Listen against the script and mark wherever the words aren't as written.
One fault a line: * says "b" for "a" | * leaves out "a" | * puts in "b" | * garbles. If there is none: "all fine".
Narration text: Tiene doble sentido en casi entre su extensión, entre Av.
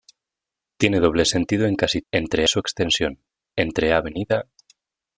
all fine